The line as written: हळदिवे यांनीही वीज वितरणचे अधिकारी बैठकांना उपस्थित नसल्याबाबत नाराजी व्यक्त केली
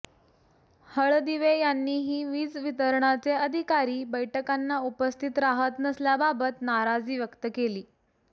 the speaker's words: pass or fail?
fail